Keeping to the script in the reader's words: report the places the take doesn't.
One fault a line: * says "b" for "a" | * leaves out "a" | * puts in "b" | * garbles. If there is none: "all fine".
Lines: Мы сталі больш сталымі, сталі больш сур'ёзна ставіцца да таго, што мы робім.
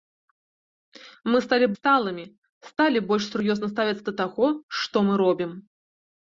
* leaves out "больш"